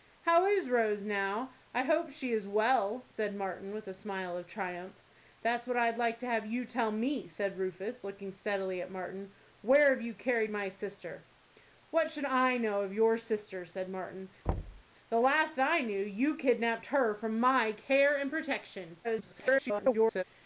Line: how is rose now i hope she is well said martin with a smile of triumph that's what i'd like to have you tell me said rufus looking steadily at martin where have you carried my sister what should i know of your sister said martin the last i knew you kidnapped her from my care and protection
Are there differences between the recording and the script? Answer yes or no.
yes